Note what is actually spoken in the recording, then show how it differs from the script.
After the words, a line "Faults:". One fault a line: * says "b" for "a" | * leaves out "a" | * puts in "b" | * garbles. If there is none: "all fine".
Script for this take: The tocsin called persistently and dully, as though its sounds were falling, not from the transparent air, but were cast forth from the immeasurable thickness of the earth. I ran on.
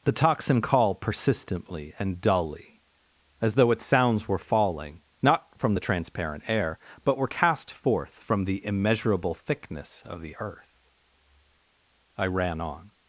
The tocsin call persistently and dully, as though its sounds were falling, not from the transparent air, but were cast forth from the immeasurable thickness of the earth. I ran on.
Faults:
* says "call" for "called"